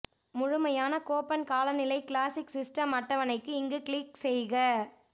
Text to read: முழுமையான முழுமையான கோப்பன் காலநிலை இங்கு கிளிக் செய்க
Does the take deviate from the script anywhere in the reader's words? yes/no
yes